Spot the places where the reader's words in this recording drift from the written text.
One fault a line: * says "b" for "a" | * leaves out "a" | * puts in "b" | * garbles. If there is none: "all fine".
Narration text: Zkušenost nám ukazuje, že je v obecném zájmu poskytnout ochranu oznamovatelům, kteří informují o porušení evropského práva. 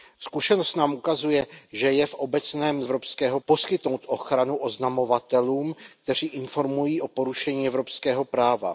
* says "evropského" for "zájmu"